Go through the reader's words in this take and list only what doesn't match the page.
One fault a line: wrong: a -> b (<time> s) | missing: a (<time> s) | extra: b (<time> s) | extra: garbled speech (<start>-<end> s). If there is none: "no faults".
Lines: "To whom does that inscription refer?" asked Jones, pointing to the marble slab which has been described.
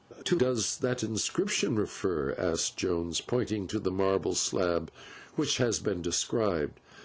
missing: whom (0.4 s)